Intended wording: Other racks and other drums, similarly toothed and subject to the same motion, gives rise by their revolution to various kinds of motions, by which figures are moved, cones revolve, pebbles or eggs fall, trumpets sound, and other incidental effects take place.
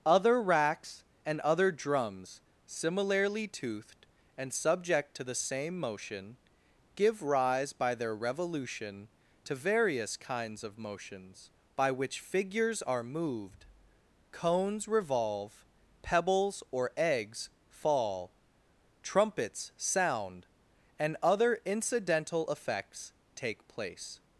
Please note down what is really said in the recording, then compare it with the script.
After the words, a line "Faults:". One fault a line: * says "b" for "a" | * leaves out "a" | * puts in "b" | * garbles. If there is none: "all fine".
Other racks and other drums, similarly toothed and subject to the same motion, give rise by their revolution to various kinds of motions, by which figures are moved, cones revolve, pebbles or eggs fall, trumpets sound, and other incidental effects take place.
Faults:
* says "give" for "gives"